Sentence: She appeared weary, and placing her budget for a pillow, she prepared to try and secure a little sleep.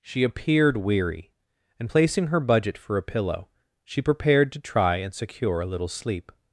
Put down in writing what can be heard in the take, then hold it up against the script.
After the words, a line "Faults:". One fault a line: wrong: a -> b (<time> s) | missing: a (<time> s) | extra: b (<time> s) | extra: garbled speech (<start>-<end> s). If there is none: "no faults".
She appeared weary, and placing her budget for a pillow, she prepared to try and secure a little sleep.
Faults:
no faults